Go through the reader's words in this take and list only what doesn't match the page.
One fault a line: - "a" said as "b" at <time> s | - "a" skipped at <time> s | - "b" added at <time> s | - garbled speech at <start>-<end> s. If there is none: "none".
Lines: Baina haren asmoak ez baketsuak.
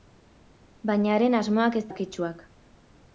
none